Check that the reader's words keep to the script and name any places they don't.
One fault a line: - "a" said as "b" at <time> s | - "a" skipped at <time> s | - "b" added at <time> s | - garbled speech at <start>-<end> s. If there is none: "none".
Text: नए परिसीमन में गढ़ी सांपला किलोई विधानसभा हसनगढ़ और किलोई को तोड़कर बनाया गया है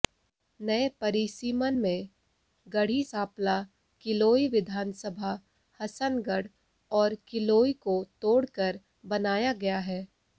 none